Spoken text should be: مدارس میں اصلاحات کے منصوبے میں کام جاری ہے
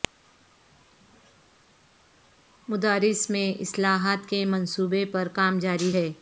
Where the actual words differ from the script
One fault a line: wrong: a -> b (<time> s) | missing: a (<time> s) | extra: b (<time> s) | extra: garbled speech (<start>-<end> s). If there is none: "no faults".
wrong: میں -> پر (5.0 s)